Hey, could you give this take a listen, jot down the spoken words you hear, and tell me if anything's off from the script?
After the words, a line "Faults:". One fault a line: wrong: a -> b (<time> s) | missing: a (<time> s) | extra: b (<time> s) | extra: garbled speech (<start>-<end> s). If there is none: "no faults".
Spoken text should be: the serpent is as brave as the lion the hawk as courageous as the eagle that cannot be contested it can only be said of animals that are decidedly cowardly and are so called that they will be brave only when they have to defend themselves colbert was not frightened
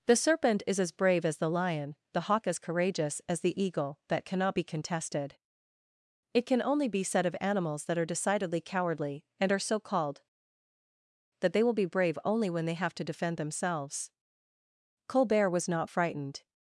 the serpent is as brave as the lion the hawk as courageous as the eagle that cannot be contested it can only be said of animals that are decidedly cowardly and are so called that they will be brave only when they have to defend themselves colbert was not frightened
Faults:
no faults